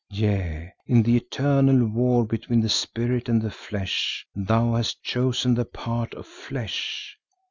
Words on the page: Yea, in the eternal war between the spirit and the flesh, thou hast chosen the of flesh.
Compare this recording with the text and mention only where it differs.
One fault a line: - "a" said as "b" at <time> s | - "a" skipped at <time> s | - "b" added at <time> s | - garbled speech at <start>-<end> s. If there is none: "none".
- "part" added at 5.6 s